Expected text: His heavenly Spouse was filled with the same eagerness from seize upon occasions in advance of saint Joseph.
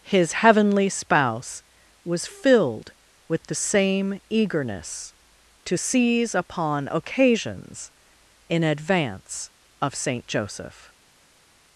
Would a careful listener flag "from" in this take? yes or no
yes